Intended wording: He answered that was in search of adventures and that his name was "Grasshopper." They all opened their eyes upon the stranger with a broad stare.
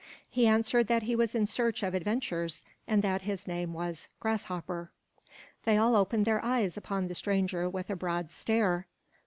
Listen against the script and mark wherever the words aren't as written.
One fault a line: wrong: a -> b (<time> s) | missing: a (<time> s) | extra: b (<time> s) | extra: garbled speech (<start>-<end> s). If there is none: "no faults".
extra: he (1.0 s)